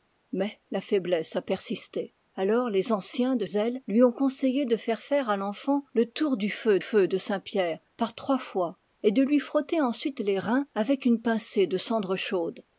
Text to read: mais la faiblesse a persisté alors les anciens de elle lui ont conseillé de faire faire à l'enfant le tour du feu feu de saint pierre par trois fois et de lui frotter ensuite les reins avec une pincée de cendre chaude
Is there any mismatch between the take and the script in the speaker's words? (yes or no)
no